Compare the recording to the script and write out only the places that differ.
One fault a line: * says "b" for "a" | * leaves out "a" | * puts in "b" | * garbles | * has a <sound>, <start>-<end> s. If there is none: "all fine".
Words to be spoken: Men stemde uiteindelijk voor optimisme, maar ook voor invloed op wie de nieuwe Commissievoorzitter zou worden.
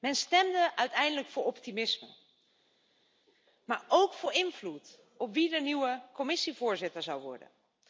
all fine